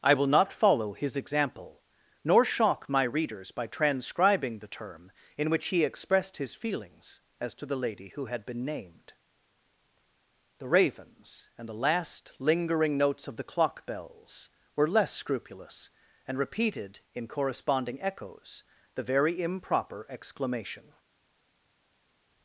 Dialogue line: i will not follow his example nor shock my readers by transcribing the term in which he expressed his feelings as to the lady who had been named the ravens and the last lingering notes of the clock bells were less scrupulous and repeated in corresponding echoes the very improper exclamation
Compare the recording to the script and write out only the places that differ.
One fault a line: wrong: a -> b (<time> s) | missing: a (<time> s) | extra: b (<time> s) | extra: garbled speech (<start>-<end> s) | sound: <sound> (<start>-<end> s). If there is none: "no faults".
no faults